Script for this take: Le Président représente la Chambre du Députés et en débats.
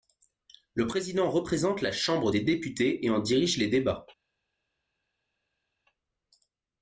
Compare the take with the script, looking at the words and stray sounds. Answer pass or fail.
fail